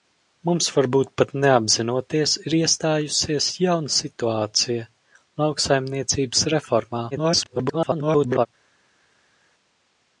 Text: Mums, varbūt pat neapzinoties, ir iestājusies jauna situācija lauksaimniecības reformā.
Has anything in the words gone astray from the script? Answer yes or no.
yes